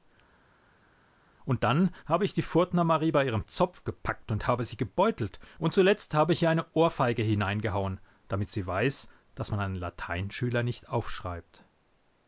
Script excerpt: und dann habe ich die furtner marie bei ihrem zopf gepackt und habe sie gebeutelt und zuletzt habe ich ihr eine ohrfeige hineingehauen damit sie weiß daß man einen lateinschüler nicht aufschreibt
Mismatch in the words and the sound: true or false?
false